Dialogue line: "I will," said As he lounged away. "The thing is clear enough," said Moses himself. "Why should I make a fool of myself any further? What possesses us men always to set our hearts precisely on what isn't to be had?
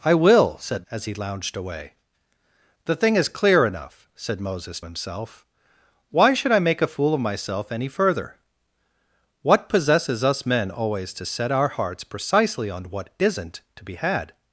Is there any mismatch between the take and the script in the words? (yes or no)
no